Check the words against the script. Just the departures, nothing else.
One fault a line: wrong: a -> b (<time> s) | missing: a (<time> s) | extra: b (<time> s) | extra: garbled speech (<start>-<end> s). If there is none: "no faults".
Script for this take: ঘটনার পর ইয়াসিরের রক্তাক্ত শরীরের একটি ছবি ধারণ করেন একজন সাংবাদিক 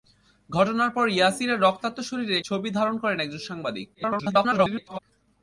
missing: একটি (2.4 s)
extra: garbled speech (3.9-5.0 s)